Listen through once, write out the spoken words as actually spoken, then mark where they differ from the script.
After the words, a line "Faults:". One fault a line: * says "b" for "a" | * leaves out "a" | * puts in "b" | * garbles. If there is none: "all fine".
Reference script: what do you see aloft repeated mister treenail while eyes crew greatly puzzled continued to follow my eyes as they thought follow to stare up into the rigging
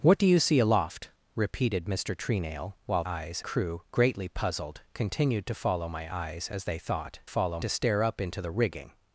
what do you see aloft repeated mister treenail while eyes crew greatly puzzled continued to follow my eyes as they thought follow to stare up into the rigging
Faults:
all fine